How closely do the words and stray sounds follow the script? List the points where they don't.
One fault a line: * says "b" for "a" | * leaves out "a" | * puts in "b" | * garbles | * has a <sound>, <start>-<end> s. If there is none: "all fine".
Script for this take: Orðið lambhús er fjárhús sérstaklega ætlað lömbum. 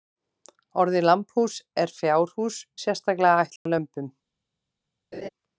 * has a dropout, 3.6-3.7 s
* has a laugh, 5.1-5.3 s